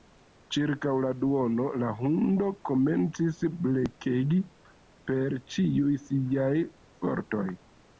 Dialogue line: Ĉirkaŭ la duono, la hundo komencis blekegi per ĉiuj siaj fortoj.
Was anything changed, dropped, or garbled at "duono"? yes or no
no